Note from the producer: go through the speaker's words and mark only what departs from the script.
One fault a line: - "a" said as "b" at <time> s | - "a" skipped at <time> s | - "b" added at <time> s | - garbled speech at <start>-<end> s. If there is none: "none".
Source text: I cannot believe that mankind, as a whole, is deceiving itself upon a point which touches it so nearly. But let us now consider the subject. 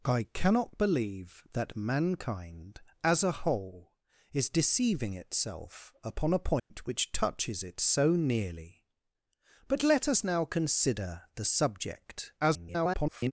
- garbled speech at 12.4-13.3 s